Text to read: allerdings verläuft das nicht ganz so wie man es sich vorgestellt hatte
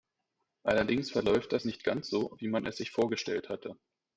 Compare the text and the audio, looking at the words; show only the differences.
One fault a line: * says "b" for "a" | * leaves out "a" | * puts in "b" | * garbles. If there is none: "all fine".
all fine